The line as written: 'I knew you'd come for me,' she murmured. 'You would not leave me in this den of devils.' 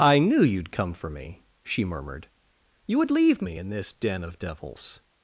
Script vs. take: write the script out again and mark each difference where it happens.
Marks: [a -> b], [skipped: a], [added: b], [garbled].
'I knew you'd come for me,' she murmured. 'You would [skipped: not] leave me in this den of devils.'